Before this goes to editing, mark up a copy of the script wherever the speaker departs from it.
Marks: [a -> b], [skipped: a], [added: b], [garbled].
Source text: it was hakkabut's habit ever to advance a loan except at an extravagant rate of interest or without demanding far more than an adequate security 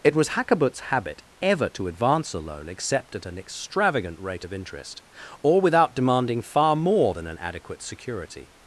it was hakkabut's habit ever to advance a loan except at an extravagant rate of interest or without demanding far more than an adequate security